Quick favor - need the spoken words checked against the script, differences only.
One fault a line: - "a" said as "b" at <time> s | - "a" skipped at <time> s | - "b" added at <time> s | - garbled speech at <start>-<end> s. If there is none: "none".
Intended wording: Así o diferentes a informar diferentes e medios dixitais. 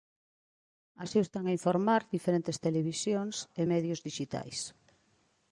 - "diferentes" said as "están" at 1.3 s
- "televisións" added at 2.6 s